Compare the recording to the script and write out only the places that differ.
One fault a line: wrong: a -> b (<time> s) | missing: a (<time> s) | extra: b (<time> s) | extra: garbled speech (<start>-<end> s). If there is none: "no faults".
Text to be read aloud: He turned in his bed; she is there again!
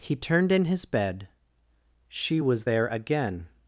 wrong: is -> was (2.4 s)